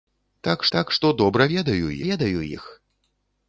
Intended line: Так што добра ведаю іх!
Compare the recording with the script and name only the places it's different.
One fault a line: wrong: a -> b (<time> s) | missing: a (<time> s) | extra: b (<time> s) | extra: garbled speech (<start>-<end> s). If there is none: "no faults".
extra: так (0.7 s)
extra: ведаю (2.1 s)